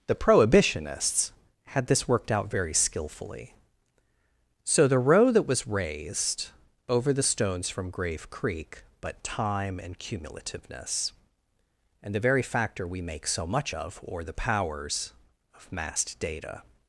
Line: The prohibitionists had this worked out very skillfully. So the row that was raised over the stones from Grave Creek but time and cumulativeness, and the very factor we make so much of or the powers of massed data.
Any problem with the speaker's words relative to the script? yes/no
no